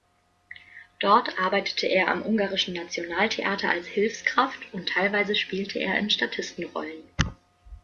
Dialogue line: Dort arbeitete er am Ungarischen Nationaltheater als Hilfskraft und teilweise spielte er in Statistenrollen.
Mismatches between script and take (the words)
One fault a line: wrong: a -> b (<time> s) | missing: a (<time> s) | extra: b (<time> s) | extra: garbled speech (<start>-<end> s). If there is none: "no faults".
no faults